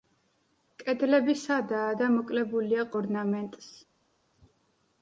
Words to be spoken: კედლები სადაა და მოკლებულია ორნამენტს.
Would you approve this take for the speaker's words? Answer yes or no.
yes